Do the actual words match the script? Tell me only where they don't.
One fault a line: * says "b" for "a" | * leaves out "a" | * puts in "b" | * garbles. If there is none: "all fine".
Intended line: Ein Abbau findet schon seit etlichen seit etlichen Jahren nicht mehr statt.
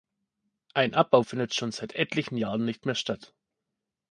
* leaves out "seit etlichen"